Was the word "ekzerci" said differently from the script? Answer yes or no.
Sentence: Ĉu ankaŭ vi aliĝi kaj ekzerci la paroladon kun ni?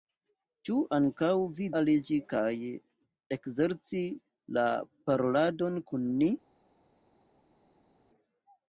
no